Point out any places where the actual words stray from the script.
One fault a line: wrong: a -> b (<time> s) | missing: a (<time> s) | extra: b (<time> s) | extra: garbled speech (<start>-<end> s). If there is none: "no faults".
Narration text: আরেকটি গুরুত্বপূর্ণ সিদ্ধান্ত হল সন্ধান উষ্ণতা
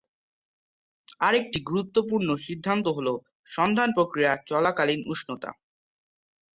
extra: প্রক্রিয়া চলাকালীন (4.0 s)